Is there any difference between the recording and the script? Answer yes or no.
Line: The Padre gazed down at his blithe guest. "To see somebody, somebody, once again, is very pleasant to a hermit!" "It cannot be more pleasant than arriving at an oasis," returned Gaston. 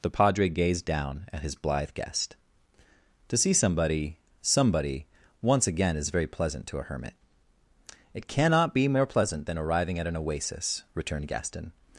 no